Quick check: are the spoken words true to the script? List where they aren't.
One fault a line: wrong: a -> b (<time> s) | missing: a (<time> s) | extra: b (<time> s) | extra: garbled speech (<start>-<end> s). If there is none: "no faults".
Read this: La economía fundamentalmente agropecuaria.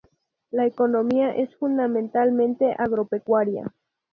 extra: es (1.4 s)